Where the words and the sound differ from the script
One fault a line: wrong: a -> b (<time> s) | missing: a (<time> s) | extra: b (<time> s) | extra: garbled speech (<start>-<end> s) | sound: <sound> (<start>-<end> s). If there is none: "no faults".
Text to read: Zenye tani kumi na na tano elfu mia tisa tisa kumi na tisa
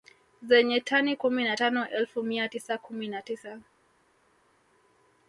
missing: na (1.6 s)
missing: tisa (2.8 s)